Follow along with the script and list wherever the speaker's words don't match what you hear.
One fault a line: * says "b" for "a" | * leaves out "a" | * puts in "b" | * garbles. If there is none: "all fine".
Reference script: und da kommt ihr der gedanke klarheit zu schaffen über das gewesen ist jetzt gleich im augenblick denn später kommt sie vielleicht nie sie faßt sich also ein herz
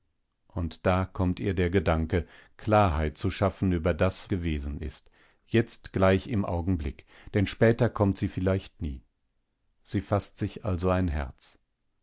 all fine